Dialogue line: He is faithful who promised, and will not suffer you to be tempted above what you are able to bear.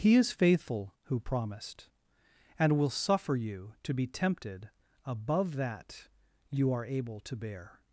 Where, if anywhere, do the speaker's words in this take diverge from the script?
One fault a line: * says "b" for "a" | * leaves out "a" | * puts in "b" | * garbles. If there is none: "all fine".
* leaves out "not"
* says "that" for "what"